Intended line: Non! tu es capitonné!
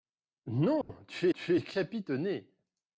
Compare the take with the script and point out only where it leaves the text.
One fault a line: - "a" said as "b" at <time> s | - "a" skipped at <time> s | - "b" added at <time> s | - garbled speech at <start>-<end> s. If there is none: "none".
- "tu" added at 1.3 s